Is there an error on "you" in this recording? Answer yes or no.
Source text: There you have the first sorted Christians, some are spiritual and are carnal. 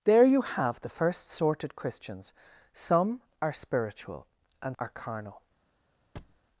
no